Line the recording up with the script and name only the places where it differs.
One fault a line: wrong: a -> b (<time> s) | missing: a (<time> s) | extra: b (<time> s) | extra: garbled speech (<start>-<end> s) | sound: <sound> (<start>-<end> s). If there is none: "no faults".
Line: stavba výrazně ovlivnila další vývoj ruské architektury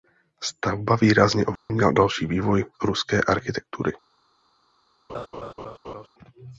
sound: dropout (1.6-1.7 s)
sound: laugh (5.1-6.1 s)